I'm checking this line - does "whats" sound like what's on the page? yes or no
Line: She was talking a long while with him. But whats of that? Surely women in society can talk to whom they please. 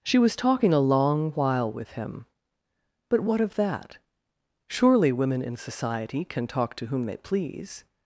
no